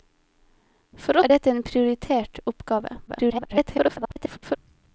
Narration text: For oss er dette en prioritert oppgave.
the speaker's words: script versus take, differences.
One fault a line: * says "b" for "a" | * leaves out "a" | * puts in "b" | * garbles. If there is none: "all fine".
* leaves out "oss"
* garbles